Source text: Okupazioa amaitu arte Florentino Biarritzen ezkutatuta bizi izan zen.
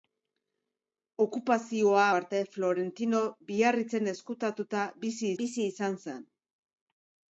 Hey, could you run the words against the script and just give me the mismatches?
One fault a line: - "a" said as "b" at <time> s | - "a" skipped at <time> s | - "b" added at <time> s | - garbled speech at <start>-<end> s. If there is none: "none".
- "amaitu" skipped at 2.0 s
- "bizi" added at 5.4 s